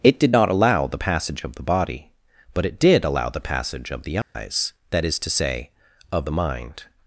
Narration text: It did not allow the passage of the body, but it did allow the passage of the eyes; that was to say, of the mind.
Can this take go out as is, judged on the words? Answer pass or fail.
fail